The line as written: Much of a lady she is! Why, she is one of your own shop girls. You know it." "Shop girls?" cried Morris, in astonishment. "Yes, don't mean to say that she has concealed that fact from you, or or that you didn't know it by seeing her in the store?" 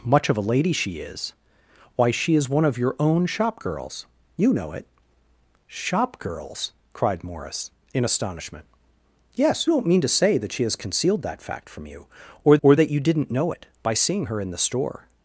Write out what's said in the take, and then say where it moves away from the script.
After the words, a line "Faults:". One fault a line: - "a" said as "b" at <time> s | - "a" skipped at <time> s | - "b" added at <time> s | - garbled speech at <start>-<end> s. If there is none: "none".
Much of a lady she is! Why, she is one of your own shop girls. You know it." "Shop girls?" cried Morris, in astonishment. "Yes, don't mean to say that she has concealed that fact from you, or or that you didn't know it by seeing her in the store?"
Faults:
none